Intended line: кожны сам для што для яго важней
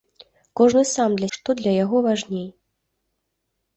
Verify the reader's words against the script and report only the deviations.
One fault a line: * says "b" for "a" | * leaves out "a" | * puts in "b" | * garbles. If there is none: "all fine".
all fine